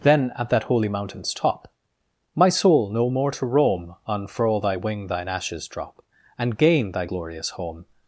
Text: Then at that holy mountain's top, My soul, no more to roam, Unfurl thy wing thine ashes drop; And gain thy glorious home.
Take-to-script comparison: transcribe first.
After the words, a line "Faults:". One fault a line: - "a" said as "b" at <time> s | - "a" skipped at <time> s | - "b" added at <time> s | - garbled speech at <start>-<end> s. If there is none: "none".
Then at that holy mountain's top, My soul, no more to roam, Unfurl thy wing thine ashes drop; And gain thy glorious home.
Faults:
none